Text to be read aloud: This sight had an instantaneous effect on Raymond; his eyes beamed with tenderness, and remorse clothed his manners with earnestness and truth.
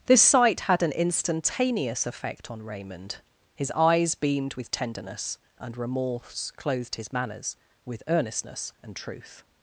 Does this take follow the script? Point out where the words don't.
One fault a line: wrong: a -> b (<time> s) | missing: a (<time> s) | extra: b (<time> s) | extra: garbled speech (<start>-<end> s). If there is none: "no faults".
no faults